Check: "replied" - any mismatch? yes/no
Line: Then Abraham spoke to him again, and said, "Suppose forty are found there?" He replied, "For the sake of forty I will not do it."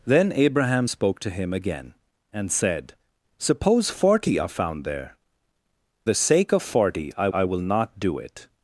yes